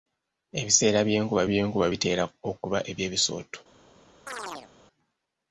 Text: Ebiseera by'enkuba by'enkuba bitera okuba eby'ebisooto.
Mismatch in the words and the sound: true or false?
true